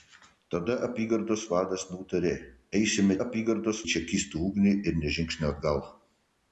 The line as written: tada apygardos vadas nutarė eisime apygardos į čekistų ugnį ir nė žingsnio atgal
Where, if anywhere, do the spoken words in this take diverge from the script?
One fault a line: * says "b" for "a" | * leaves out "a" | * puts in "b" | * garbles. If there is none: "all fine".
all fine